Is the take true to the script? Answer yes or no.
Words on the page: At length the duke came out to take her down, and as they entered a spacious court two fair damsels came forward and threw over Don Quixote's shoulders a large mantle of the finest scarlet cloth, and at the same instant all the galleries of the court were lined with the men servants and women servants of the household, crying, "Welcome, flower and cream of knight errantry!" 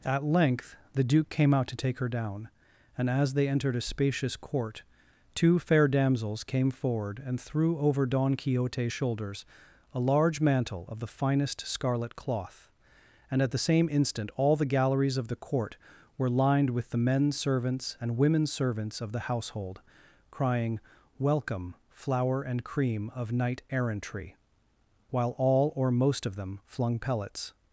no